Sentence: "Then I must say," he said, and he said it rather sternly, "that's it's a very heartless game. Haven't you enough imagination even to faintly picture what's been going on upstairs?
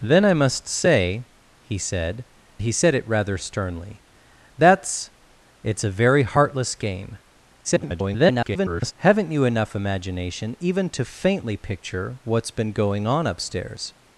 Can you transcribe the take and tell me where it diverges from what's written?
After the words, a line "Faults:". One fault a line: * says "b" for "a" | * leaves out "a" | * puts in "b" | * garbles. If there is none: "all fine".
"Then I must say," he said, he said it rather sternly, "that's it's a very heartless game. [garbled] Haven't you enough imagination even to faintly picture what's been going on upstairs?
Faults:
* leaves out "and"
* garbles